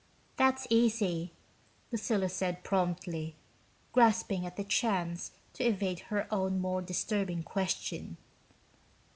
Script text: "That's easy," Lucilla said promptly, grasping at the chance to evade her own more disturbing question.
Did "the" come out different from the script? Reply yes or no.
no